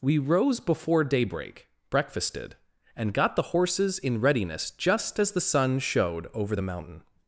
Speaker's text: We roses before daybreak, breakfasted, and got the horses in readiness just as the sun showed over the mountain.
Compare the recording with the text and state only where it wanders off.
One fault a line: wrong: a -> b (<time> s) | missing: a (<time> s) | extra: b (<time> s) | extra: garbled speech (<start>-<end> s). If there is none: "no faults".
wrong: roses -> rose (0.2 s)